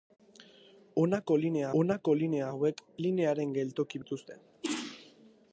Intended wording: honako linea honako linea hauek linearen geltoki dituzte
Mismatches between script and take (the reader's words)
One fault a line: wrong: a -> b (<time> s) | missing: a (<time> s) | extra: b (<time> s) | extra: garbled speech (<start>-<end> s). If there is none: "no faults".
no faults